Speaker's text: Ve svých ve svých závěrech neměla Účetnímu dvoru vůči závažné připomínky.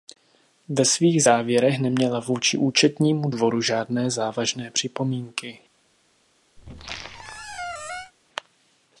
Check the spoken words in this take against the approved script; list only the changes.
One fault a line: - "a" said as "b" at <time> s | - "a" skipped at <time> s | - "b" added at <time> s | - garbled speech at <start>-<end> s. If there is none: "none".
- "ve svých" skipped at 1.2 s
- "vůči" added at 2.2 s
- "vůči" said as "žádné" at 3.6 s